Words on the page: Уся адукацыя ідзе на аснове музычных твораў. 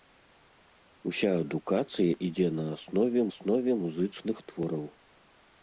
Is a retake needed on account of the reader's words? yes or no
yes